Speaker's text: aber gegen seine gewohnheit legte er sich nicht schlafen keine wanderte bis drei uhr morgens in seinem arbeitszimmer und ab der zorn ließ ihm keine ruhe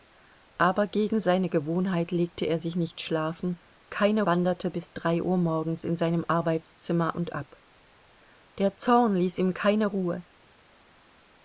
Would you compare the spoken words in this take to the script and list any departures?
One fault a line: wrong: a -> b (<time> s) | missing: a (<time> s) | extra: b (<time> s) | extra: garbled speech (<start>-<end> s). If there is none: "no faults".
no faults